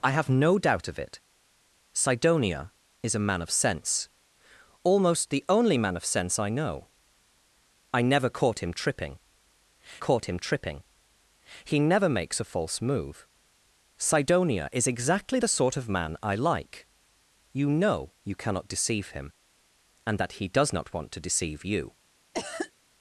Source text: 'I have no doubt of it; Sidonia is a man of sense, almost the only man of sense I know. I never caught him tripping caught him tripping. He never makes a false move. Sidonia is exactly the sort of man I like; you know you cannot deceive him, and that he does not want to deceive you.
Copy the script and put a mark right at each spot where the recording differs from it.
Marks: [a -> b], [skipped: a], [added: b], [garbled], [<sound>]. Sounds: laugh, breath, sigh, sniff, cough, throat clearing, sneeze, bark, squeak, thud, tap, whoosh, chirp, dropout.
'I have no doubt of it; Sidonia is a man of sense, almost the only man of sense I know. I never caught him tripping caught him tripping. He never makes a false move. Sidonia is exactly the sort of man I like; you know you cannot deceive him, and that he does not want to deceive you. [cough]